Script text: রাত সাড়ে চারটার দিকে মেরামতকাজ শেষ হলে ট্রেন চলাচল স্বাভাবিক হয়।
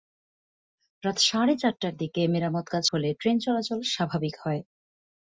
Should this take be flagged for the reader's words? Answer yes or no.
yes